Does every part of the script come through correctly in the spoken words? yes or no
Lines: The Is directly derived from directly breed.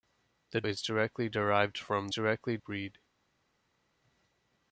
yes